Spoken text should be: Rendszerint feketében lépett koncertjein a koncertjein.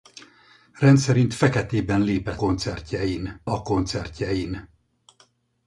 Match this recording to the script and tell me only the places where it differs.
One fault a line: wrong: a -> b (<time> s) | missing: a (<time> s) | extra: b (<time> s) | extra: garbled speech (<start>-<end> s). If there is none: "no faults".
no faults